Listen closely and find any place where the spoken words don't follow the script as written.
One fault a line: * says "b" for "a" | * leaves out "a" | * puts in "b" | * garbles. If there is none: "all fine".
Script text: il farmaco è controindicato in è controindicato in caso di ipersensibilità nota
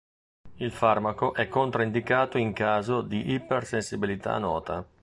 * leaves out "è controindicato in"